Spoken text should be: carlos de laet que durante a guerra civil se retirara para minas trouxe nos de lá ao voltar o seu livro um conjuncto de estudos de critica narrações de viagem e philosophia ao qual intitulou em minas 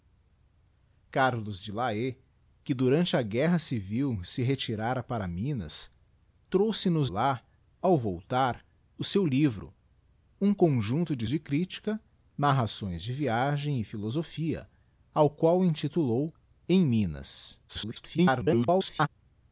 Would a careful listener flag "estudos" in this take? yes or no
yes